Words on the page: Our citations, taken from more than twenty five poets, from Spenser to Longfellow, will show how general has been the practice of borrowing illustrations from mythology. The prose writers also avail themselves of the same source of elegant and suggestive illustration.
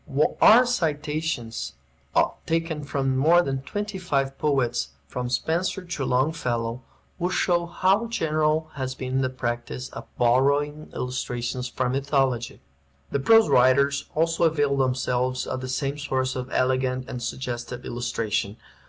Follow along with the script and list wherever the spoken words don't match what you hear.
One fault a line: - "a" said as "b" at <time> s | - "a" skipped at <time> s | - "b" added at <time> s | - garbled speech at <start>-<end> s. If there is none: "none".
none